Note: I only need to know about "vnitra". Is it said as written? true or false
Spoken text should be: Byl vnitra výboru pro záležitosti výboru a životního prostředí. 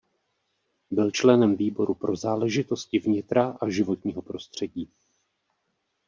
false